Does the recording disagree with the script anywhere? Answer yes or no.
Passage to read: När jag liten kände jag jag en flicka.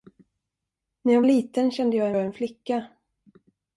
no